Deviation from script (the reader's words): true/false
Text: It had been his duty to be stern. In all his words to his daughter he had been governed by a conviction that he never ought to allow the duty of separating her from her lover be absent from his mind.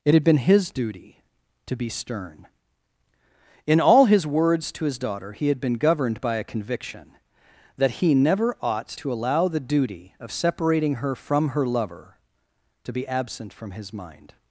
true